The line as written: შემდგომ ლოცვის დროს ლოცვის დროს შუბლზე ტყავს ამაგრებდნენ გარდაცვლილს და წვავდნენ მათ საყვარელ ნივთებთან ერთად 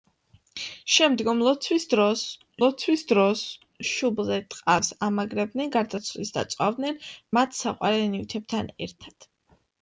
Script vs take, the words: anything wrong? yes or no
no